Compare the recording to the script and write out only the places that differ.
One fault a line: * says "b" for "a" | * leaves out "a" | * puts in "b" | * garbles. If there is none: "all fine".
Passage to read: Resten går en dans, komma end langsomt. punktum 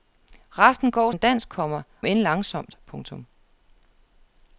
all fine